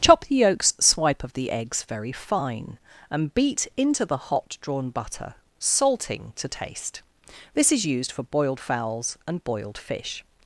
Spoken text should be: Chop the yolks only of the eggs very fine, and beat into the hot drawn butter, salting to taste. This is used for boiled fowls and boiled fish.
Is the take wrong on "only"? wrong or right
wrong